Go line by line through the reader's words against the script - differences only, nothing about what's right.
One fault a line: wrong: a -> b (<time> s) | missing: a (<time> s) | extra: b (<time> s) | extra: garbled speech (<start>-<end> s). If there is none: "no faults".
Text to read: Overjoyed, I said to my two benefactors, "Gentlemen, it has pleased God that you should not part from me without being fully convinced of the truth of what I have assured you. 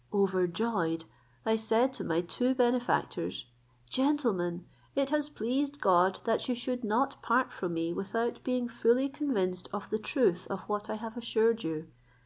no faults